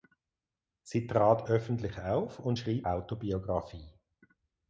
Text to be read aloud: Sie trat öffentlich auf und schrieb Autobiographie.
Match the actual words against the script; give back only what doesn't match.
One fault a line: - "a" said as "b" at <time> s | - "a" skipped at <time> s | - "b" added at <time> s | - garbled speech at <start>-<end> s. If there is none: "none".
none